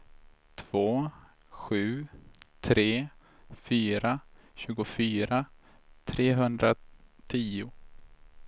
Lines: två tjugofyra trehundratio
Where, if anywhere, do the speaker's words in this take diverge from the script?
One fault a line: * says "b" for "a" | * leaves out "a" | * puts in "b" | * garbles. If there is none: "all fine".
* puts in "sju tre fyra"